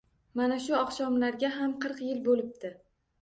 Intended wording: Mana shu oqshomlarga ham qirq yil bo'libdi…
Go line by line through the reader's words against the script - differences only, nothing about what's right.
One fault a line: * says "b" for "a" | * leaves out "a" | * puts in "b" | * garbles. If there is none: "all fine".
all fine